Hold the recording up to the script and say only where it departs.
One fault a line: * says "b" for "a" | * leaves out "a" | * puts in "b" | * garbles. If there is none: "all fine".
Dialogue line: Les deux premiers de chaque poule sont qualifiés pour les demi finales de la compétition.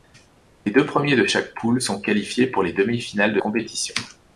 * leaves out "la"